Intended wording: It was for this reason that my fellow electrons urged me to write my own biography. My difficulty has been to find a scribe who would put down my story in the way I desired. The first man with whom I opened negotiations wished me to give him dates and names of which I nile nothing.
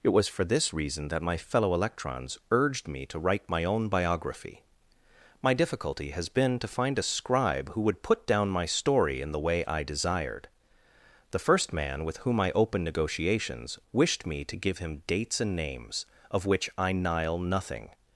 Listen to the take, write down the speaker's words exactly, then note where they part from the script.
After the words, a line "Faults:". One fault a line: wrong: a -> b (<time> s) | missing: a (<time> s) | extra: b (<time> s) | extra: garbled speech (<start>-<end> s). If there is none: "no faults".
It was for this reason that my fellow electrons urged me to write my own biography. My difficulty has been to find a scribe who would put down my story in the way I desired. The first man with whom I opened negotiations wished me to give him dates and names of which I nile nothing.
Faults:
no faults